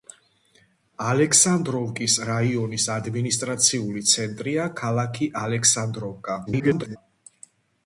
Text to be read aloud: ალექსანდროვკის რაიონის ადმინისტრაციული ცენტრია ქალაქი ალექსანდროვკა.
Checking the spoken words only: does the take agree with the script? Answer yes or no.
no